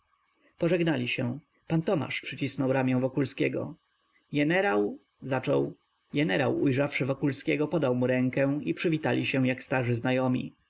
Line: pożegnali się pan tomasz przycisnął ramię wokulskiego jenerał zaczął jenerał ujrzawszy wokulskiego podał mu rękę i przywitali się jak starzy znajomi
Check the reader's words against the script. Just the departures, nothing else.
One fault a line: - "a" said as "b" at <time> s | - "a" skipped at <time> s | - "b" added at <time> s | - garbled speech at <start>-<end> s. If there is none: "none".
none